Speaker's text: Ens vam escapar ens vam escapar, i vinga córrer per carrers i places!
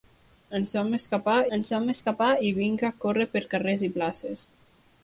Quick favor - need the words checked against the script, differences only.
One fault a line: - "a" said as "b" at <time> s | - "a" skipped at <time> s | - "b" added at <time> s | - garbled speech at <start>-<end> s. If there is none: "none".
none